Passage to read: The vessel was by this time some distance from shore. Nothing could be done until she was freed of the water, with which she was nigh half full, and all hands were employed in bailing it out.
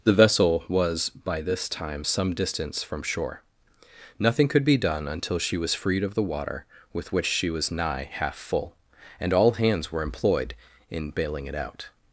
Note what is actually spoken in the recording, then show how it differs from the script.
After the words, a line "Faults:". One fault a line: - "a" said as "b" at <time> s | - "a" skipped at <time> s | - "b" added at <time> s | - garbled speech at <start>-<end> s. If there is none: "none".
The vessel was by this time some distance from shore. Nothing could be done until she was freed of the water, with which she was nigh half full, and all hands were employed in bailing it out.
Faults:
none